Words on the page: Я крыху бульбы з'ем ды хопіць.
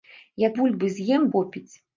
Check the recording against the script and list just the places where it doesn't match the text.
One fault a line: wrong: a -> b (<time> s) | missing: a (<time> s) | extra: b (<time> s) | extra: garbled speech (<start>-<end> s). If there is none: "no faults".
missing: крыху (0.5 s)
missing: ды (1.3 s)